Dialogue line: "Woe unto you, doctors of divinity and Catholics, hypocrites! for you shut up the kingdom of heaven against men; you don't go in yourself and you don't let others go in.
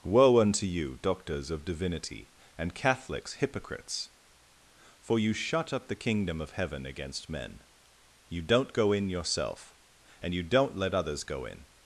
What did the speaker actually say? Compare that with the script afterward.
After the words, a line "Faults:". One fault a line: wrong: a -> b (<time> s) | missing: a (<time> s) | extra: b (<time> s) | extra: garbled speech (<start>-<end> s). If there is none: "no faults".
"Woe unto you, doctors of divinity and Catholics, hypocrites! for you shut up the kingdom of heaven against men; you don't go in yourself and you don't let others go in.
Faults:
no faults